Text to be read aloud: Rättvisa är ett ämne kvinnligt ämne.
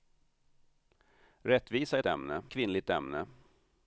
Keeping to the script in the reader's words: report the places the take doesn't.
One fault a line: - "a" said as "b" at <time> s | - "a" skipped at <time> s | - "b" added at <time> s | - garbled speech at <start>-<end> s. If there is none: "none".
none